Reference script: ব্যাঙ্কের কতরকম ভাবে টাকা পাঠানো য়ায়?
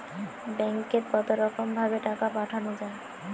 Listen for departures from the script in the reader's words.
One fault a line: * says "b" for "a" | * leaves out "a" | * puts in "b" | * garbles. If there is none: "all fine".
all fine